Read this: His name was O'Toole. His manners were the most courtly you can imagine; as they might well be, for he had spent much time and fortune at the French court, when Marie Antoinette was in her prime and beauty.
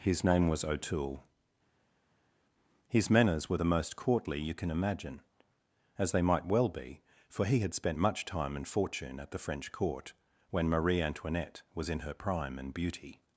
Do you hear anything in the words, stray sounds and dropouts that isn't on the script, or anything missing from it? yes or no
no